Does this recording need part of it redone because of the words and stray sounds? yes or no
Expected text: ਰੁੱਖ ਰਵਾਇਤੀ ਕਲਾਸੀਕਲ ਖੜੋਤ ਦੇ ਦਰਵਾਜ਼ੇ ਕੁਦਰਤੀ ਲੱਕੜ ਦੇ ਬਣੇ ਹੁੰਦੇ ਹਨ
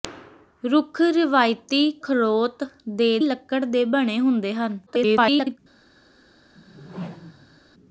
yes